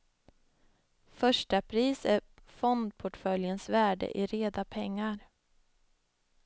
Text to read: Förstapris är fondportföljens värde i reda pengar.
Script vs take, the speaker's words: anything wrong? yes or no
no